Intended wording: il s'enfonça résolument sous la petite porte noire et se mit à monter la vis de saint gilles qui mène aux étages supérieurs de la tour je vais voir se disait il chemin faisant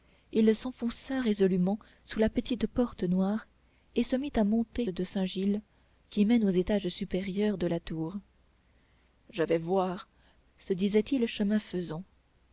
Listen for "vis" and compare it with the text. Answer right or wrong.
wrong